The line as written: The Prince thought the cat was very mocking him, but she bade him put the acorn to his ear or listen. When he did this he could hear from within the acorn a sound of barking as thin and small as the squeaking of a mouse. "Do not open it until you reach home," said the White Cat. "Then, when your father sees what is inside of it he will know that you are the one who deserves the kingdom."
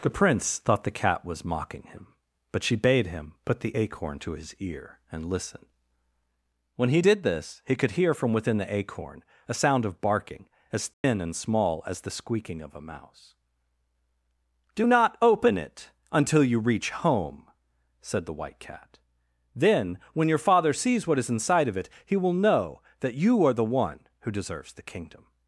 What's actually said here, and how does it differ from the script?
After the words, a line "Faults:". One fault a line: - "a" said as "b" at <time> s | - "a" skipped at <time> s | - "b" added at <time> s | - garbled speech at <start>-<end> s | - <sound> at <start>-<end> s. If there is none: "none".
The Prince thought the cat was mocking him, but she bade him put the acorn to his ear and listen. When he did this he could hear from within the acorn a sound of barking as thin and small as the squeaking of a mouse. "Do not open it until you reach home," said the White Cat. "Then, when your father sees what is inside of it he will know that you are the one who deserves the kingdom."
Faults:
- "very" skipped at 1.4 s
- "or" said as "and" at 5.1 s
- dropout at 10.9-11.0 s